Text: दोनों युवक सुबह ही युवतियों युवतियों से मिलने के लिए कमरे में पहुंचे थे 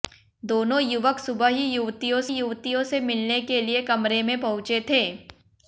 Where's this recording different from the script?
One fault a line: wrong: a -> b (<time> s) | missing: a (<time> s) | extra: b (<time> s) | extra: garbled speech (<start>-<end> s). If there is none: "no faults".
no faults